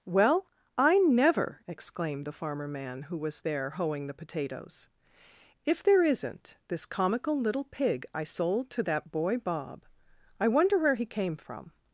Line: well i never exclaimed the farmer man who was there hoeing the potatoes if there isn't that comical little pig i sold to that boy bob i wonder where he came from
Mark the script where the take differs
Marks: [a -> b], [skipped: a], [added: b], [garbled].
well i never exclaimed the farmer man who was there hoeing the potatoes if there isn't [that -> this] comical little pig i sold to that boy bob i wonder where he came from